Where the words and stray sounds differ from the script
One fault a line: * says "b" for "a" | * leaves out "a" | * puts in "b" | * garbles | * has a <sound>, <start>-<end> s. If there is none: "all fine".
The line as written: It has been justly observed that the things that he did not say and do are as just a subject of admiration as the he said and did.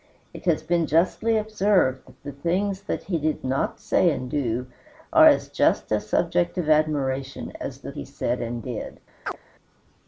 * has a chirp, 9.3-9.4 s